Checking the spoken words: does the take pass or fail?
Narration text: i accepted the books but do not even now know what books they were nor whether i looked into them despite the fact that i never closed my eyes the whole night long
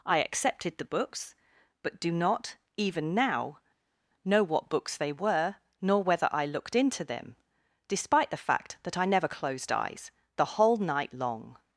fail